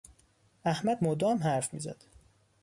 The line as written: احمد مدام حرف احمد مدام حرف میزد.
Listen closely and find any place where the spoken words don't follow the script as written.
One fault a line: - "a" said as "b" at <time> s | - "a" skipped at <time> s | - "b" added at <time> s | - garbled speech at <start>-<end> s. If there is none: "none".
- "احمد مدام حرف" skipped at 1.7 s